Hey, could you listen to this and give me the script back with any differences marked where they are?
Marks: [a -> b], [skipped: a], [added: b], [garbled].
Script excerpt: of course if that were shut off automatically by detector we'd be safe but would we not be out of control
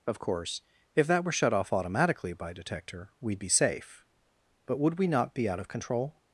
of course if that were shut off automatically by detector we'd be safe but would we not be out of control